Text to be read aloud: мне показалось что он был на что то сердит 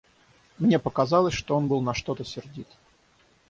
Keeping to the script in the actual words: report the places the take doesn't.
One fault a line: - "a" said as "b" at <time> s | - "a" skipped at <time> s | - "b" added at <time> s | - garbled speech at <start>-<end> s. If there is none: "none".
none